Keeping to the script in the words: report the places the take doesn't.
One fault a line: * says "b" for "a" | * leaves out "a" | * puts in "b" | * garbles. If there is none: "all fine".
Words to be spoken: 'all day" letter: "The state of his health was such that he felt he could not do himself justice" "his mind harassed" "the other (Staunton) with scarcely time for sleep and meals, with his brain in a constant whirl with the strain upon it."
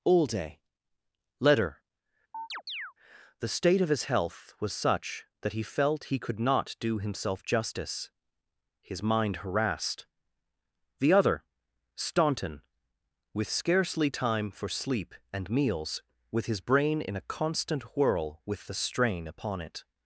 all fine